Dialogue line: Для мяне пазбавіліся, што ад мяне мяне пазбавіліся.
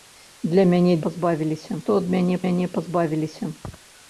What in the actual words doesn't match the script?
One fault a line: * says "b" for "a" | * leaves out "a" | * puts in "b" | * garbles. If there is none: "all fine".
all fine